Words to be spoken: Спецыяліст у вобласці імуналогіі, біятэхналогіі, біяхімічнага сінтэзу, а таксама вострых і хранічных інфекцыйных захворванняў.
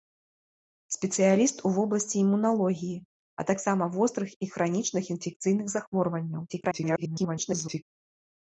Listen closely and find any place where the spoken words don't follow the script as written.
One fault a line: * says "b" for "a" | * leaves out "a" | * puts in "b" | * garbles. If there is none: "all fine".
* leaves out "біятэхналогіі біяхімічнага сінтэзу"
* garbles